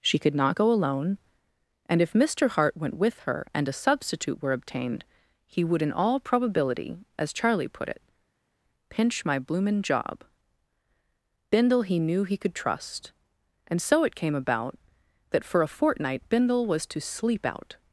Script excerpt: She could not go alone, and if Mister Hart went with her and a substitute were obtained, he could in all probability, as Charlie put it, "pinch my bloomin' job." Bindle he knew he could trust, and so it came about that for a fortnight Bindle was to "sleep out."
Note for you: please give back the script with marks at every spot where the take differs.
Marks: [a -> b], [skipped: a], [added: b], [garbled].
She could not go alone, and if Mister Hart went with her and a substitute were obtained, he [could -> would] in all probability, as Charlie put it, "pinch my bloomin' job." Bindle he knew he could trust, and so it came about that for a fortnight Bindle was to "sleep out."